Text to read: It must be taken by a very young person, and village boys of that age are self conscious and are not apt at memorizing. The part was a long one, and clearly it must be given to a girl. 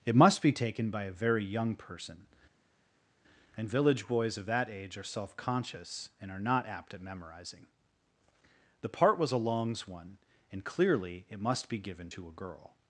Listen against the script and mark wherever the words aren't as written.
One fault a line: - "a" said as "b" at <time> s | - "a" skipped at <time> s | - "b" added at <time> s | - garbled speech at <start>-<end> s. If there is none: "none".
- "long" said as "longs" at 9.4 s